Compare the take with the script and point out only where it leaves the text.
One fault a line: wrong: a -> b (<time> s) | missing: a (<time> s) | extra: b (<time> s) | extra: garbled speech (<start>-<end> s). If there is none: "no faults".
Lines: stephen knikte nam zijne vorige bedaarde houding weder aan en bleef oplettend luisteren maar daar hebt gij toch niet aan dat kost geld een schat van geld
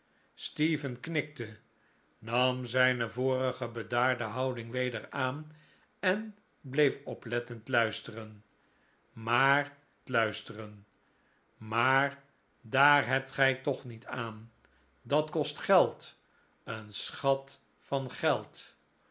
extra: luisteren maar (10.1 s)